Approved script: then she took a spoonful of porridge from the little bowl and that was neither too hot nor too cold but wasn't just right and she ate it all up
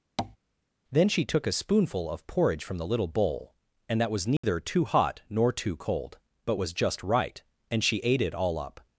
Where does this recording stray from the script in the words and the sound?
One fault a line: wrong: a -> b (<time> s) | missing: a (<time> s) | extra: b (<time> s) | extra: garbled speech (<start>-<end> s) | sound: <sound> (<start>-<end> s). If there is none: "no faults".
sound: tap (0.2-0.4 s)
sound: dropout (4.4-4.4 s)
wrong: wasn't -> was (6.5 s)